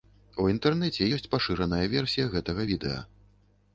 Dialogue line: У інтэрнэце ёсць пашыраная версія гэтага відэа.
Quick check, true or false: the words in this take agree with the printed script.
true